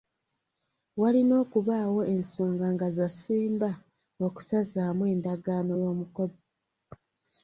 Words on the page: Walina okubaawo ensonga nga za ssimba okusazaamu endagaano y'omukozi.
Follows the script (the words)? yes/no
yes